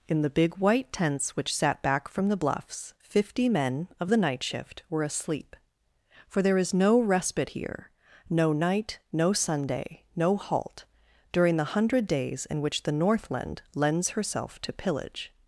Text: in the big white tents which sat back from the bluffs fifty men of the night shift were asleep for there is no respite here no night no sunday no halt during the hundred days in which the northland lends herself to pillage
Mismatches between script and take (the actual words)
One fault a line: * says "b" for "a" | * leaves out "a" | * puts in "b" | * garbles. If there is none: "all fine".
all fine